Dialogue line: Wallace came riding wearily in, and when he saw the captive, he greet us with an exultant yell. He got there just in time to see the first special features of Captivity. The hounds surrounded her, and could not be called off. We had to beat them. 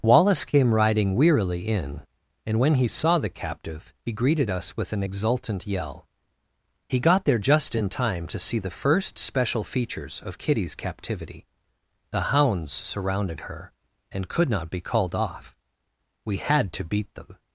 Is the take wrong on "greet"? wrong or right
wrong